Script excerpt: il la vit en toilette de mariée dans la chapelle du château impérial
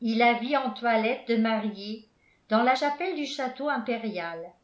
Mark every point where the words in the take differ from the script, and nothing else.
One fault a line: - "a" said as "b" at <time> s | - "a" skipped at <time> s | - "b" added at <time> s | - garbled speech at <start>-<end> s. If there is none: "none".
none